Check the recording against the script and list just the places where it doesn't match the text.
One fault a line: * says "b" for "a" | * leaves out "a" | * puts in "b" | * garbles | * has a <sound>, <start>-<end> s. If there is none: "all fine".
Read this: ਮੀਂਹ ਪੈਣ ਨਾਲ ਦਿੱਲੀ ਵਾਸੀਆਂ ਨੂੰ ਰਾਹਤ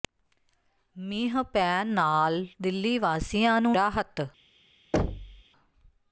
* has a thud, 4.9-5.4 s